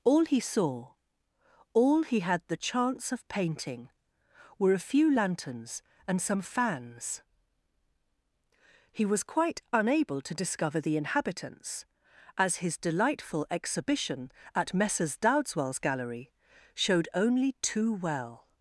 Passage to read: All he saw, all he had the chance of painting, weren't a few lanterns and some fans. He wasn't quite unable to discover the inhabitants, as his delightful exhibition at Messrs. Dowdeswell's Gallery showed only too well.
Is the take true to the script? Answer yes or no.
no